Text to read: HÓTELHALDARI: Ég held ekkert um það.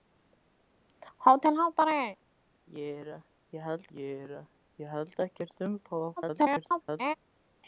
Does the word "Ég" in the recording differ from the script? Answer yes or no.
no